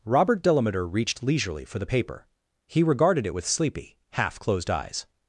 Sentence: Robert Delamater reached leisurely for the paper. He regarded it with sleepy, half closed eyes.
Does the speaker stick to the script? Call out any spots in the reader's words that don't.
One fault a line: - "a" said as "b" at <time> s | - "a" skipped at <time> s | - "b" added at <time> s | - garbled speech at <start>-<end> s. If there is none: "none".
none